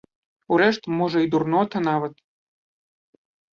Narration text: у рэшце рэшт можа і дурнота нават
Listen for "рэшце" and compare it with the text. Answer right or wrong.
wrong